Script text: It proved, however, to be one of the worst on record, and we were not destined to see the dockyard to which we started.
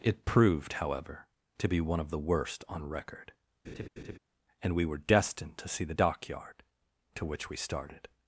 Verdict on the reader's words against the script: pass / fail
fail